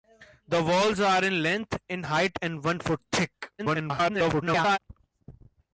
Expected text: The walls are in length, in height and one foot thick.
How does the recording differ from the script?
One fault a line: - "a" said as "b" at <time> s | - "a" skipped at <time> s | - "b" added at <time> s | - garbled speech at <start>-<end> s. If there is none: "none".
- garbled speech at 3.6-4.8 s